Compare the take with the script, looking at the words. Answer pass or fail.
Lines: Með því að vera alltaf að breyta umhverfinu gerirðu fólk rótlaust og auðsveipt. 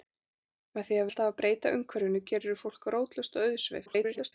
fail